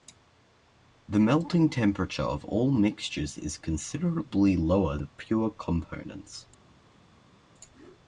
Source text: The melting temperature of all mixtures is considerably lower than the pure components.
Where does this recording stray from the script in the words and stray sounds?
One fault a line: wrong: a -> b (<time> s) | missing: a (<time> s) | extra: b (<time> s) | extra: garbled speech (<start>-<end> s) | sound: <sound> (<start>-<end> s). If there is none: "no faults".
missing: than (5.0 s)